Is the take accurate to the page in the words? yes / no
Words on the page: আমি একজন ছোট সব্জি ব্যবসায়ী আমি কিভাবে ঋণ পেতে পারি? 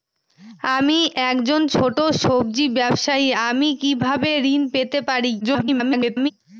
no